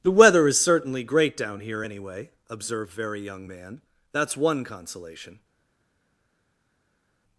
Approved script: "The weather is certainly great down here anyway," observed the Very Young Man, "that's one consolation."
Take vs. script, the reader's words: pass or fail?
fail